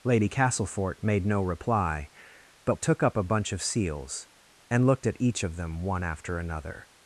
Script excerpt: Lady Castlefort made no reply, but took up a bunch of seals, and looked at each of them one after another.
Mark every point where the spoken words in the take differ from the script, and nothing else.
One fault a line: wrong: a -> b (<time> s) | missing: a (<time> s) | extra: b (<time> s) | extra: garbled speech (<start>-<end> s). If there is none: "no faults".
no faults